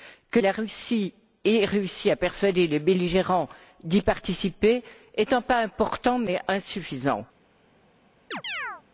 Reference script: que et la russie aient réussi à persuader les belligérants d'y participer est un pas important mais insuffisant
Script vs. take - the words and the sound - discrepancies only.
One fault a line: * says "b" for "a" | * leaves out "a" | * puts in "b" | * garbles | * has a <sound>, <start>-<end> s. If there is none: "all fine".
* has a chirp, 8.3-8.8 s